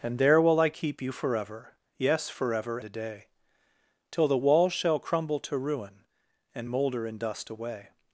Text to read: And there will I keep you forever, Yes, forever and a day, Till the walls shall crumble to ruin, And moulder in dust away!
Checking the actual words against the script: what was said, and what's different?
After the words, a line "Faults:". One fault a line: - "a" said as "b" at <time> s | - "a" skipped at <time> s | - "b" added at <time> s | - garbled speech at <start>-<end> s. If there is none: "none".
And there will I keep you forever, Yes, forever a day, Till the walls shall crumble to ruin, And moulder in dust away!
Faults:
- "and" skipped at 2.8 s